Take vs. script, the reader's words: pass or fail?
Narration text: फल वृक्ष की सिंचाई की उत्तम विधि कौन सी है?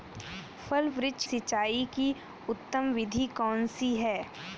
fail